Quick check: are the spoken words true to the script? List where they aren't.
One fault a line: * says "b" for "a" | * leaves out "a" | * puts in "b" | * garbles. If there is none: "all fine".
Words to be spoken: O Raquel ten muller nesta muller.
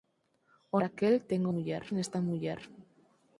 all fine